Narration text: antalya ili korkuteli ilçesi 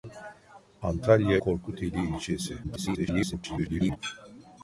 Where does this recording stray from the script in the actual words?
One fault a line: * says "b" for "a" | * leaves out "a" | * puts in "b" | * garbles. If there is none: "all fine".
* leaves out "ili"
* garbles